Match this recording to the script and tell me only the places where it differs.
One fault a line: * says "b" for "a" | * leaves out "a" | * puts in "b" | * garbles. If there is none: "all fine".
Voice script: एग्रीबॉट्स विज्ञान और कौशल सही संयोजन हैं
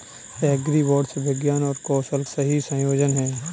all fine